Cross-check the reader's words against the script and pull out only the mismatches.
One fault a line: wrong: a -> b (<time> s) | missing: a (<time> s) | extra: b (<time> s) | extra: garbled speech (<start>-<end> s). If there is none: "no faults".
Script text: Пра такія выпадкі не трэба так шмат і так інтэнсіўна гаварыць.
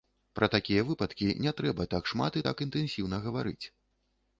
no faults